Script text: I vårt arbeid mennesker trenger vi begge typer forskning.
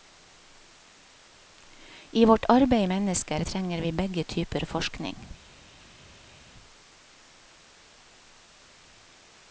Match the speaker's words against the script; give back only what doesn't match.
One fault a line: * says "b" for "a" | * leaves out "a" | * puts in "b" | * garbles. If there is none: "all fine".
all fine